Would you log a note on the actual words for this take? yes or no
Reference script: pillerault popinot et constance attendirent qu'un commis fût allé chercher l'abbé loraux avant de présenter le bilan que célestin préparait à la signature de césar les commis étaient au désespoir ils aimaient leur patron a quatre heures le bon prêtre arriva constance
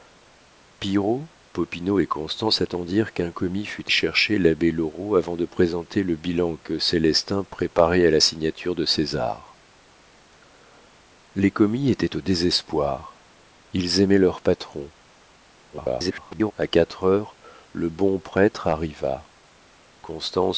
yes